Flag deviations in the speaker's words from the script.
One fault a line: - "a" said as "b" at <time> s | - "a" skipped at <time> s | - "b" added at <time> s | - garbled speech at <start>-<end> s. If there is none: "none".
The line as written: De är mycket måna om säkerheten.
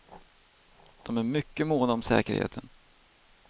none